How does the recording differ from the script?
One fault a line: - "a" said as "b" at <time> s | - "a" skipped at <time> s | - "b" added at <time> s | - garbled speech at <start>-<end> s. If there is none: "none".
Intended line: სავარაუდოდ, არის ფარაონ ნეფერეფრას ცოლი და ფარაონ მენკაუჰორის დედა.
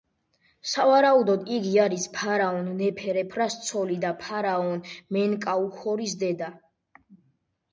- "იგი" added at 1.6 s